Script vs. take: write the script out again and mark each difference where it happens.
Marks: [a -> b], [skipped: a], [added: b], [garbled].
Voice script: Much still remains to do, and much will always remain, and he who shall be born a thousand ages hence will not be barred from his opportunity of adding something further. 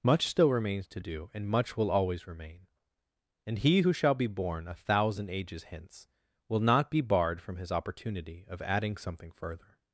Much still remains to do, and much will always remain, and he who shall be born a thousand ages hence will not be barred from his opportunity of adding something further.